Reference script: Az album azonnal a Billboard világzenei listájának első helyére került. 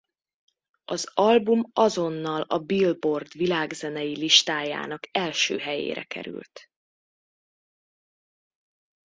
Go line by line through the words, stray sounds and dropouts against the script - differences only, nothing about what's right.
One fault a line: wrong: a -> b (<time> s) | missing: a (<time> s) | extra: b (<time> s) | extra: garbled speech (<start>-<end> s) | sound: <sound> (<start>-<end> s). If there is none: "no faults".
no faults